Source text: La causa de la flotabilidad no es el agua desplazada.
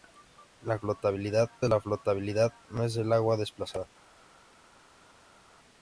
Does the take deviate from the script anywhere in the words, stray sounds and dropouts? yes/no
yes